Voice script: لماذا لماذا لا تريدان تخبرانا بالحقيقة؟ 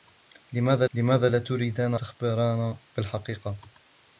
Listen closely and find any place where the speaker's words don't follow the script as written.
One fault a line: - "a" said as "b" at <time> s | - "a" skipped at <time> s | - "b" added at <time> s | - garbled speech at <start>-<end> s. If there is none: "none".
none